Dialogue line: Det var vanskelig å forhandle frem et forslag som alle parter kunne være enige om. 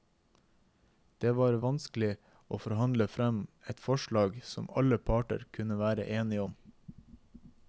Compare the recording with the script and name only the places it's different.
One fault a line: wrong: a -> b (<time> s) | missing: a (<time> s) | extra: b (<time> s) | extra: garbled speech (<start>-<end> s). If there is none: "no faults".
no faults